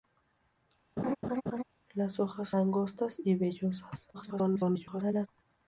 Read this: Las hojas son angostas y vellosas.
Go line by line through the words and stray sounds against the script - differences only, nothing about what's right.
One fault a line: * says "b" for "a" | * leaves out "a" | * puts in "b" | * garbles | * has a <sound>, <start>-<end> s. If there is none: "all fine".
* has a laugh, 1.0-1.6 s
* leaves out "son"
* garbles